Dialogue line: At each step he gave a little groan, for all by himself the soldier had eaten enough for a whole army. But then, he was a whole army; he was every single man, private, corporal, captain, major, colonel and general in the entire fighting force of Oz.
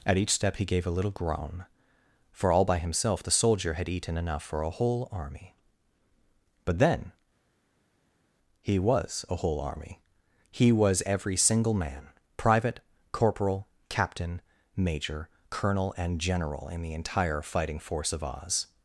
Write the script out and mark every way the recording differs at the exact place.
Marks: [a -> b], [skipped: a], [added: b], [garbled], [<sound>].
At each step he gave a little groan, for all by himself the soldier had eaten enough for a whole army. But then, he was a whole army; he was every single man, private, corporal, captain, major, colonel and general in the entire fighting force of Oz.